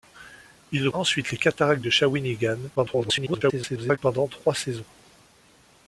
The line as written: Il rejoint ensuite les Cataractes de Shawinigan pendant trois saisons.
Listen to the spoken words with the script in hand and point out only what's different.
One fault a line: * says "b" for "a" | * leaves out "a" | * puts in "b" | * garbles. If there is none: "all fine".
* leaves out "rejoint"
* garbles